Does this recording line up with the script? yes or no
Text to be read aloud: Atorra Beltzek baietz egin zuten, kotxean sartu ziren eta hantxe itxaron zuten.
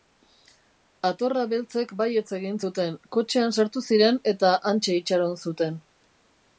yes